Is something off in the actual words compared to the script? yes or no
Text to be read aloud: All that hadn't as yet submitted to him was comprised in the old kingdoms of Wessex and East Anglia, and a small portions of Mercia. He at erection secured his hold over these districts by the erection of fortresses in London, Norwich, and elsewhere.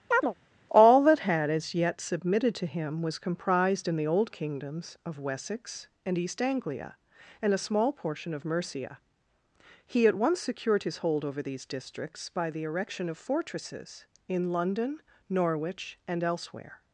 yes